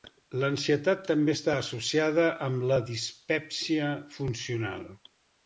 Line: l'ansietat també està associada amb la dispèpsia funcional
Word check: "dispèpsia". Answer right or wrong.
right